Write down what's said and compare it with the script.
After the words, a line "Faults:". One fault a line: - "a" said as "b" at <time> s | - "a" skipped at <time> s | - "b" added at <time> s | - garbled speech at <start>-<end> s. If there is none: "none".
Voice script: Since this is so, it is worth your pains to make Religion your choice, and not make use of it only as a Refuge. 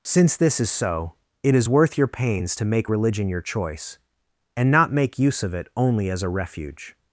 Since this is so, it is worth your pains to make Religion your choice, and not make use of it only as a Refuge.
Faults:
none